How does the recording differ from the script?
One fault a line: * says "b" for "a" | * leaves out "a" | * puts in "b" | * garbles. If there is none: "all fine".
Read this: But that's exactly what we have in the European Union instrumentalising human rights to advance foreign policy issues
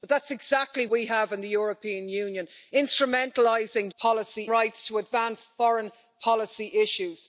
* leaves out "what"
* says "policy" for "human"